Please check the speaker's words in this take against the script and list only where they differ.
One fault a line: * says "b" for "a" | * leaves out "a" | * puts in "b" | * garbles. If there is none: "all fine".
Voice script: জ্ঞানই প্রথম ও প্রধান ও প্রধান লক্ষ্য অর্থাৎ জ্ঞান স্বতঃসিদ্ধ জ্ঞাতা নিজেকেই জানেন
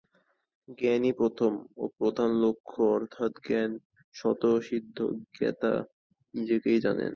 * leaves out "ও প্রধান"